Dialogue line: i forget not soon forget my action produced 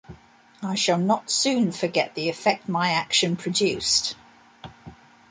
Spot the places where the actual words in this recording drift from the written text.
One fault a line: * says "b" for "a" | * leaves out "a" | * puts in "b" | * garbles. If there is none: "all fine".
* says "shall" for "forget"
* puts in "the effect"